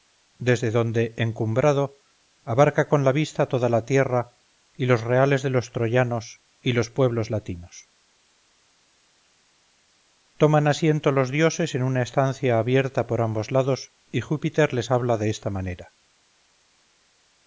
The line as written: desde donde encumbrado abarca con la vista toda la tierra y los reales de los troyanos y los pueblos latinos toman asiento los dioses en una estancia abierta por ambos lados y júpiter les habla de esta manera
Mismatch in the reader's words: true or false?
false